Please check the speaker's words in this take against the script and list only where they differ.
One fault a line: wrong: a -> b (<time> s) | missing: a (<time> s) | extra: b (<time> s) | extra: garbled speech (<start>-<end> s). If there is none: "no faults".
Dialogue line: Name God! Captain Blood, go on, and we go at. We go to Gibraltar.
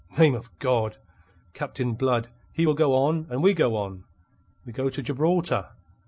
extra: of (0.3 s)
extra: he will (2.5 s)
wrong: at -> on (3.7 s)